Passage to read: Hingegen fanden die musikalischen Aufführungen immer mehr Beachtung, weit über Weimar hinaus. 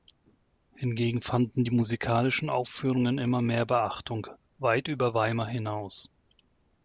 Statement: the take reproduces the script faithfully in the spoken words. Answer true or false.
true